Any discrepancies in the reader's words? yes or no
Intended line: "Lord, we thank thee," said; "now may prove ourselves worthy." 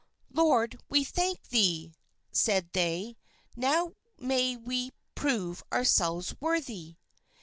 yes